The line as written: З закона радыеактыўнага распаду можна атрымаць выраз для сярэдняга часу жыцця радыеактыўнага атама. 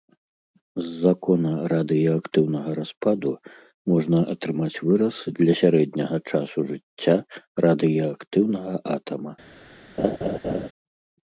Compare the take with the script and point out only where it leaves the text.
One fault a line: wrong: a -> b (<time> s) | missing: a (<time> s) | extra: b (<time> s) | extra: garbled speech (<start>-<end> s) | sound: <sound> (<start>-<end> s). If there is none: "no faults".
sound: laugh (10.0-10.7 s)